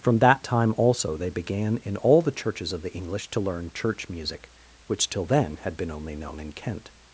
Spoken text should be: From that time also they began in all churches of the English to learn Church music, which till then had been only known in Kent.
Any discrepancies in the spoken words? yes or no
yes